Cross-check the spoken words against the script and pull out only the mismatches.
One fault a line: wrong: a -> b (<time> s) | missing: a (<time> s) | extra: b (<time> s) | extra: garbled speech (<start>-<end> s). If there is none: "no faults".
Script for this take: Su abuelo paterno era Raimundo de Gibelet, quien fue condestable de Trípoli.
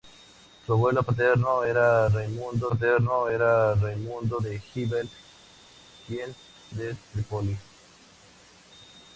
extra: paterno era Raimundo (2.7 s)
missing: fue condestable (6.3 s)